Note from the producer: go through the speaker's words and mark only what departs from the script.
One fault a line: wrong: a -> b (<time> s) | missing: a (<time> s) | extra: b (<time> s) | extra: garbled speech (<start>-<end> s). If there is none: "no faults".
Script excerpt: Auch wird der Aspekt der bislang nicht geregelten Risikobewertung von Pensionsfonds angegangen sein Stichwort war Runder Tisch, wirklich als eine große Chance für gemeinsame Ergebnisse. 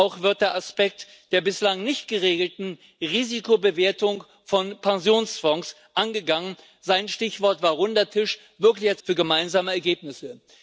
missing: eine große Chance (9.0 s)